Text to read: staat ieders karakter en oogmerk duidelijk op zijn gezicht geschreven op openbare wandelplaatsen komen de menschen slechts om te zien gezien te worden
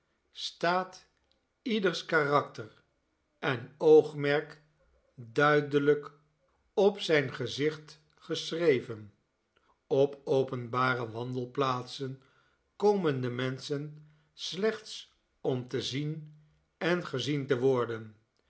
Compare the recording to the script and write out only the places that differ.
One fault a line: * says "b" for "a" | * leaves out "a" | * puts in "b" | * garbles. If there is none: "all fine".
* puts in "en"